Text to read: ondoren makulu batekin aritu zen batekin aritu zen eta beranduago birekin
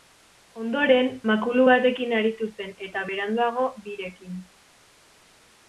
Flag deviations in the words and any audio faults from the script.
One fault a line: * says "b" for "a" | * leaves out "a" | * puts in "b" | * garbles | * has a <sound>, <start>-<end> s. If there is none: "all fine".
* leaves out "batekin aritu zen"